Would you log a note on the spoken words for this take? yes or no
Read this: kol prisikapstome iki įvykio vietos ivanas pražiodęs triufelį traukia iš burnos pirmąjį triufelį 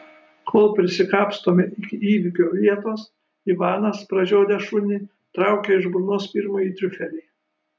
yes